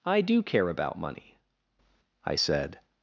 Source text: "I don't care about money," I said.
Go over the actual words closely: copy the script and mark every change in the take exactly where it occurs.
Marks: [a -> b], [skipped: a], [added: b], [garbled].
"I [don't -> do] care about money," I said.